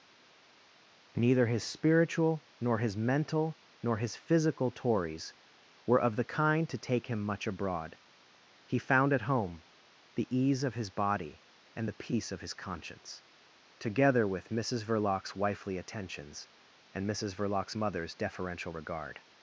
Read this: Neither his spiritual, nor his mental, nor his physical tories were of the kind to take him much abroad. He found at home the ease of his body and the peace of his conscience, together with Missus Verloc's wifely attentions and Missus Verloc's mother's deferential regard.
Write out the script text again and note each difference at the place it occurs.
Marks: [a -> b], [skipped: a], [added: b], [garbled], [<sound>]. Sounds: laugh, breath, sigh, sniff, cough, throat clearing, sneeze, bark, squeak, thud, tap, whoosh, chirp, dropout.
Neither his spiritual, nor his mental, nor his physical tories were of the kind to take him much abroad. He found at home the ease of his body and the peace of his conscience, together with Missus Verloc's wifely attentions and Missus Verloc's mother's deferential regard.